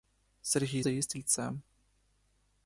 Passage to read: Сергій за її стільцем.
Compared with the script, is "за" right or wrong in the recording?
right